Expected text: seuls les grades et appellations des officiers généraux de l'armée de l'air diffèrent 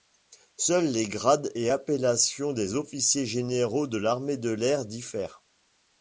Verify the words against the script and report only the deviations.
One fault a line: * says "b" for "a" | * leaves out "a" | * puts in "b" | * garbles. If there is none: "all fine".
all fine